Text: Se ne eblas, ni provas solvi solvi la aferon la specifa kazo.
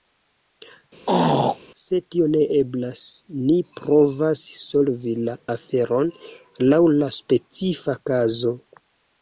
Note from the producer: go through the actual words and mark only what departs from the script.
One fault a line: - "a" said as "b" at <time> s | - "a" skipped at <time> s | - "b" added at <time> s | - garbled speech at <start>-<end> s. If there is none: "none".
- "tio" added at 2.1 s
- "solvi" skipped at 5.2 s
- "laŭ" added at 6.7 s